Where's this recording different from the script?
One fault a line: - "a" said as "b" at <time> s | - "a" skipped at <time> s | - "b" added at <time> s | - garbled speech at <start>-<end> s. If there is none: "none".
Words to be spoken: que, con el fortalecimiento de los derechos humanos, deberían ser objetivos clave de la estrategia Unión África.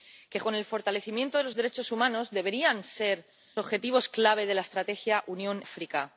none